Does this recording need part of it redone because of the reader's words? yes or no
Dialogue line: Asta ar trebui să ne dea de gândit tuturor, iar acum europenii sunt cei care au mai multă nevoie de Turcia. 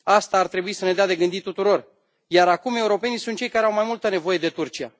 no